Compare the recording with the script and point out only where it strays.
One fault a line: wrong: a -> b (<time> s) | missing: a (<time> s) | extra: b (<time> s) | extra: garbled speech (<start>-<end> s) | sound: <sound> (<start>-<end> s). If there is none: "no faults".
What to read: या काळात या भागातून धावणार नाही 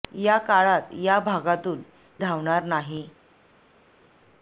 no faults